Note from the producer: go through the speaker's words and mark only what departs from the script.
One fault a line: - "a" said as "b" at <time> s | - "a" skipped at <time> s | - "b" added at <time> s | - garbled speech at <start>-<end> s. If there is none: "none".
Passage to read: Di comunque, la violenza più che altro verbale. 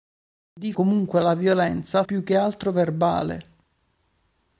none